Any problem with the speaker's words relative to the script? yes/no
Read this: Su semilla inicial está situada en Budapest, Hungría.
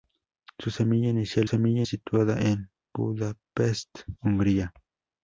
yes